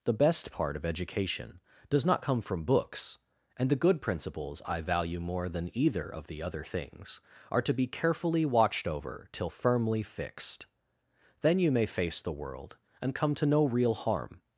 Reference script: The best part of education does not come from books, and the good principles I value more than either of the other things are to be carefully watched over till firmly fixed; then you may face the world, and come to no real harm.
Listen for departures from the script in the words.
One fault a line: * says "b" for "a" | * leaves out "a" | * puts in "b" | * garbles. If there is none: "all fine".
all fine